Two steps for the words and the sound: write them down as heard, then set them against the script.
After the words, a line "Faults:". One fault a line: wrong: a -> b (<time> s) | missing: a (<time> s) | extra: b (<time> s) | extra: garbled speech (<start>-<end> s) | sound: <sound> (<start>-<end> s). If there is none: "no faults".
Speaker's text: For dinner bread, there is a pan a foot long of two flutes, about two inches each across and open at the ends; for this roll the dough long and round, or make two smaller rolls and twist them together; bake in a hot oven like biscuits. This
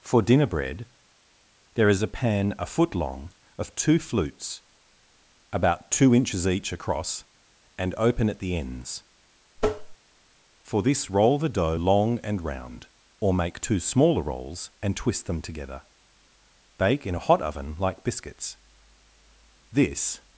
For dinner bread, there is a pan a foot long of two flutes, about two inches each across and open at the ends; for this roll the dough long and round, or make two smaller rolls and twist them together; bake in a hot oven like biscuits. This
Faults:
sound: tap (9.6-10.0 s)